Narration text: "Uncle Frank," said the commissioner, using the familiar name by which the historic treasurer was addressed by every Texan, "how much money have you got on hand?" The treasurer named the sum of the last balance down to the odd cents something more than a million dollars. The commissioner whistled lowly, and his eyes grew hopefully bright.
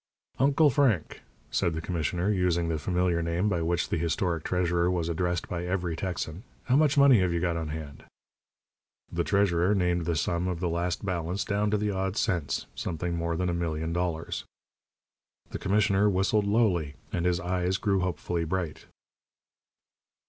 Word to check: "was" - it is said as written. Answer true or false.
true